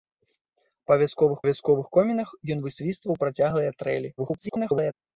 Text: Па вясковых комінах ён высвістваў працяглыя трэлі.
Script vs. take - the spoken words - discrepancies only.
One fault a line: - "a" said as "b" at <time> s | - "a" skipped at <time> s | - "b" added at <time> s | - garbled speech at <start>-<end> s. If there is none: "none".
- "вясковых" added at 1.5 s
- garbled speech at 4.2-4.9 s